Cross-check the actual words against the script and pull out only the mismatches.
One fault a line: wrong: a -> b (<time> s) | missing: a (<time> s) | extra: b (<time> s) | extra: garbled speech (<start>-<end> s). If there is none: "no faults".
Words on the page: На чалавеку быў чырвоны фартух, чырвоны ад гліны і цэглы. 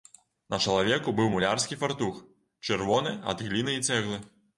wrong: чырвоны -> мулярскі (1.3 s)